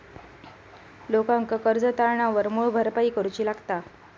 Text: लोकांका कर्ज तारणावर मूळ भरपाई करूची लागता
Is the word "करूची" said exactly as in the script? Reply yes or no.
yes